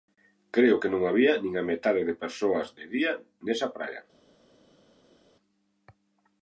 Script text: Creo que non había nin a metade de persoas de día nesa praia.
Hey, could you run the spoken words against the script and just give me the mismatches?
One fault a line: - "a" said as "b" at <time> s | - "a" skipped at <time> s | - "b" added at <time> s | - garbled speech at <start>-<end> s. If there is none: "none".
none